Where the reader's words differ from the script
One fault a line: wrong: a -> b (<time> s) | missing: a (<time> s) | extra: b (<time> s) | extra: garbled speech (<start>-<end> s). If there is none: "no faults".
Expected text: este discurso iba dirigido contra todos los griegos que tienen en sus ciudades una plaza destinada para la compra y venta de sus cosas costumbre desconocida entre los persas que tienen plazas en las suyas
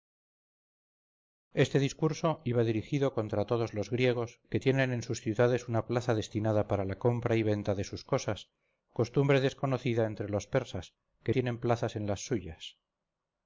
no faults